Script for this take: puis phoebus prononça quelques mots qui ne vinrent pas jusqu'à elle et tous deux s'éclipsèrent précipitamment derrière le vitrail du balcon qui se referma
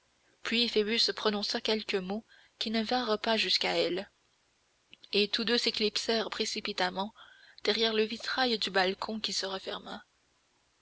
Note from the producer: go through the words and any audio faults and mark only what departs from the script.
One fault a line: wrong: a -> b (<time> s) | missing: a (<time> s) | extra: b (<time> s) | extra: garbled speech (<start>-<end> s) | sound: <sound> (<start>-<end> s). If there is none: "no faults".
no faults